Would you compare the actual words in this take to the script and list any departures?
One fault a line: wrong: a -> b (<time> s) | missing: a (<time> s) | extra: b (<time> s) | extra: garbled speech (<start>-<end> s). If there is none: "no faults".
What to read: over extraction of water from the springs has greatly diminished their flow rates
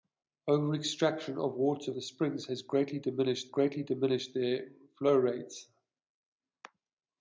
missing: from (1.9 s)
extra: greatly diminished (3.4 s)